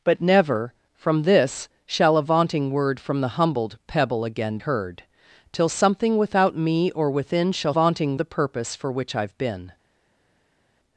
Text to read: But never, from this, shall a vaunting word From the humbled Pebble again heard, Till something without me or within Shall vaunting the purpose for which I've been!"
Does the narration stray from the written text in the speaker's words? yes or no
no